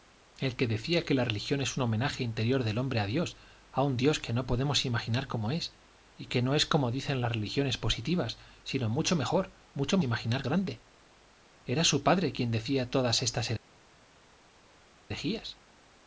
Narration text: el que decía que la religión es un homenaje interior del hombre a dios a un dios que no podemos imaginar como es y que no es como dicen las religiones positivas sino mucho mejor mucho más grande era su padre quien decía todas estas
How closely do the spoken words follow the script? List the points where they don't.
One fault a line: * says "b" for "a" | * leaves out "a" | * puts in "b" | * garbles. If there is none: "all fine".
* says "imaginar" for "más"